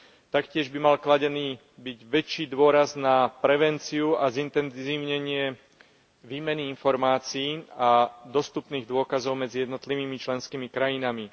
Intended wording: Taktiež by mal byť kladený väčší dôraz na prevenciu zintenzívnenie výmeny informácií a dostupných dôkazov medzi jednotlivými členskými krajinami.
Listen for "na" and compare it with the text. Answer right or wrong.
right